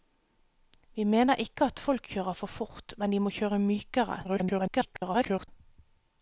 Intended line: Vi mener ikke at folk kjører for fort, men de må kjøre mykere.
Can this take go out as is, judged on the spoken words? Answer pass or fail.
fail